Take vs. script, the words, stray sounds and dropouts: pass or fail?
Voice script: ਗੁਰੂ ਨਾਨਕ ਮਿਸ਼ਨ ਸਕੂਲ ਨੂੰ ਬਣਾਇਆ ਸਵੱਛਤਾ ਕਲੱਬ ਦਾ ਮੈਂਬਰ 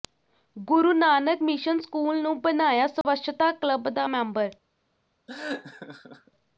fail